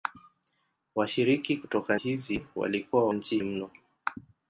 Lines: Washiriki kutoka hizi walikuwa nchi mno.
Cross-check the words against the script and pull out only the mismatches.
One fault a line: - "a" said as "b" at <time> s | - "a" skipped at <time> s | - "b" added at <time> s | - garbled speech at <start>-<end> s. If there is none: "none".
none